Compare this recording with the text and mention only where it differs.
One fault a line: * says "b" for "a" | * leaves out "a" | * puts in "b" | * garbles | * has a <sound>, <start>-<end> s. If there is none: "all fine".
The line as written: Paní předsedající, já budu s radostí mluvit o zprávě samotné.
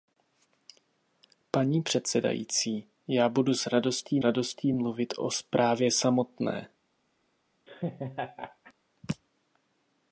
* puts in "radostí"
* has a laugh, 7.7-8.7 s